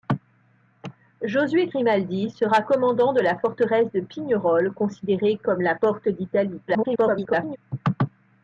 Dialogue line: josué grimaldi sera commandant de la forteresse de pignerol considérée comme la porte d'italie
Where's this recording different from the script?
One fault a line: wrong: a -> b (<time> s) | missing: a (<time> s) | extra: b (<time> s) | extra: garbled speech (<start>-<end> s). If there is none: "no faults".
extra: garbled speech (6.7-7.6 s)